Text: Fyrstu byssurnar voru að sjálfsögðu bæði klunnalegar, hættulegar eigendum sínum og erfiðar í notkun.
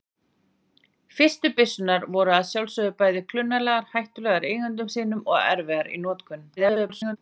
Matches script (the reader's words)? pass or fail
fail